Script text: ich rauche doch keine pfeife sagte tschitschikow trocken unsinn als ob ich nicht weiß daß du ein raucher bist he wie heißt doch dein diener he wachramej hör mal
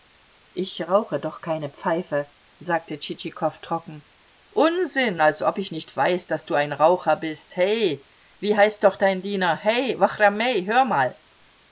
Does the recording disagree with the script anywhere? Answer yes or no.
no